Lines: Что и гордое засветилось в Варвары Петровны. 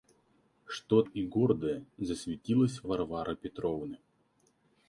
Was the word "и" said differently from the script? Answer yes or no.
no